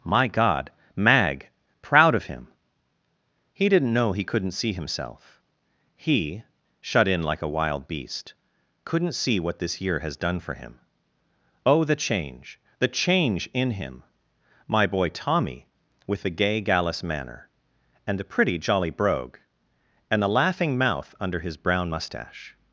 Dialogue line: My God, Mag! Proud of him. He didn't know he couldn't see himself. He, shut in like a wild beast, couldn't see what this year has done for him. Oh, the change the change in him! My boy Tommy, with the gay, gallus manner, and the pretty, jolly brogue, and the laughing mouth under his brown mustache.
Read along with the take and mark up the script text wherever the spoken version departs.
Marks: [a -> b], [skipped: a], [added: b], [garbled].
My God, Mag! Proud of him. He didn't know he couldn't see himself. He, shut in like a wild beast, couldn't see what this year has done for him. Oh, the change the change in him! My boy Tommy, with the gay, gallus manner, and the pretty, jolly brogue, and the laughing mouth under his brown mustache.